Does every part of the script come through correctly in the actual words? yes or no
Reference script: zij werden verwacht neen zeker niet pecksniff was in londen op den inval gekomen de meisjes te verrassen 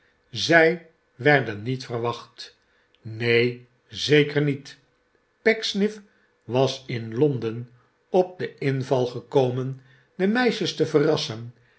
no